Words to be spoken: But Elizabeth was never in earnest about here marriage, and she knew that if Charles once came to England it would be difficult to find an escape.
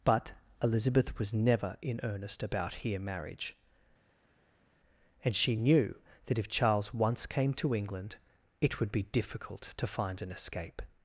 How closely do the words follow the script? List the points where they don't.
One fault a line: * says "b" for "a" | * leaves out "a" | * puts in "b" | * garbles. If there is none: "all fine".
all fine